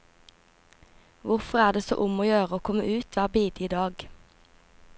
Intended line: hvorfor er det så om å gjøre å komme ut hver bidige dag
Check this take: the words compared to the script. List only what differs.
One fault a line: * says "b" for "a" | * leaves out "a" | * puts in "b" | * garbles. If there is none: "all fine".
all fine